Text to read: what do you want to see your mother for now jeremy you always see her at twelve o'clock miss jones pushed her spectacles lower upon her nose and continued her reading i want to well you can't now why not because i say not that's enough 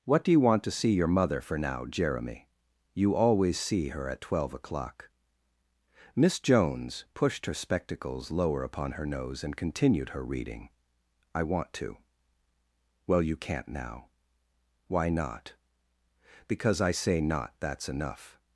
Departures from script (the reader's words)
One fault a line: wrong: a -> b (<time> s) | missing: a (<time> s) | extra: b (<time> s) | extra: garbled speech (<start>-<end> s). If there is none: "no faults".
no faults